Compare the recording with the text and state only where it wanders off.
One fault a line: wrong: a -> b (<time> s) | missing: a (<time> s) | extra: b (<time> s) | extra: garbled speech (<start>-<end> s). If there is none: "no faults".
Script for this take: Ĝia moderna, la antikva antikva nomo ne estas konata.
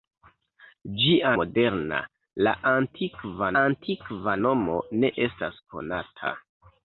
no faults